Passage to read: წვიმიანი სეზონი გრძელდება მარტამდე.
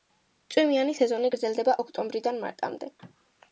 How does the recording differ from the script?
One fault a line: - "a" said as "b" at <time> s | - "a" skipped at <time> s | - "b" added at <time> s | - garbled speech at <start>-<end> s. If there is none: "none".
- "ოქტომბრიდან" added at 1.8 s